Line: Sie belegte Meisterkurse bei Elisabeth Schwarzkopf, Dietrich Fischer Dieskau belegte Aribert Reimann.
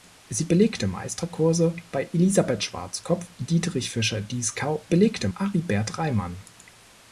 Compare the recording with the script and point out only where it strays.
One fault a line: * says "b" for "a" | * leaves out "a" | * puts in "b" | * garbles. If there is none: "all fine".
all fine